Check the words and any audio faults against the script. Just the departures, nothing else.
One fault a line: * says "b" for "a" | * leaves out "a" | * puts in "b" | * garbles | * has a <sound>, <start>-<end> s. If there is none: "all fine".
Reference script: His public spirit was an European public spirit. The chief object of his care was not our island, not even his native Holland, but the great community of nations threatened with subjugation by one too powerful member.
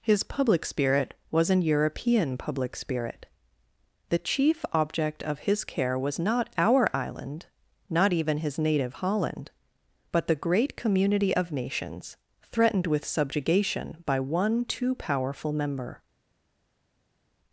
all fine